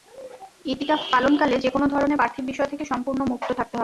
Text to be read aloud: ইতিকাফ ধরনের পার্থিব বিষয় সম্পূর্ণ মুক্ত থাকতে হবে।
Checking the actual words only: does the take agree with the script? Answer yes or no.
no